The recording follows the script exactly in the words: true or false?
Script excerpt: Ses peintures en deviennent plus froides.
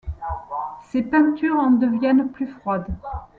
true